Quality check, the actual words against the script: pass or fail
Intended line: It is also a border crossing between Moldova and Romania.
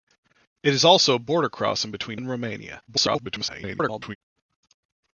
fail